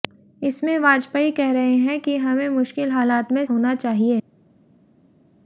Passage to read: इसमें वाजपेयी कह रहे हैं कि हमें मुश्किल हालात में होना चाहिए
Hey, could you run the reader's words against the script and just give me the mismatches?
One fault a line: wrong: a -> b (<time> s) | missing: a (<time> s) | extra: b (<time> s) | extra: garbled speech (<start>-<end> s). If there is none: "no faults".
no faults